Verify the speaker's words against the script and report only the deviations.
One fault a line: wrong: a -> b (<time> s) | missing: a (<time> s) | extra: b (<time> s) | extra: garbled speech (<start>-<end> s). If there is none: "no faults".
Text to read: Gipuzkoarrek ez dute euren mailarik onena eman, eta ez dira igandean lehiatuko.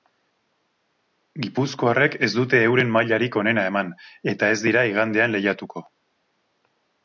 no faults